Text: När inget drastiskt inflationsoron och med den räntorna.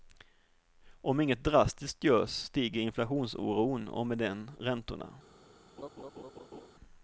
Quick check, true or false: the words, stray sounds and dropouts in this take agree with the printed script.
false